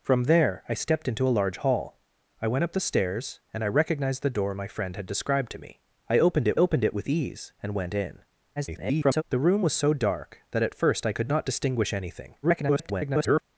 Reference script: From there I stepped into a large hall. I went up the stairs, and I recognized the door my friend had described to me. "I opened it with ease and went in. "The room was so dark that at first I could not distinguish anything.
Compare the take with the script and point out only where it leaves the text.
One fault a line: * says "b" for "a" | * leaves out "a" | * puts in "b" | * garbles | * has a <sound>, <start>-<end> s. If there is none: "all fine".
* puts in "opened it"
* garbles
* garbles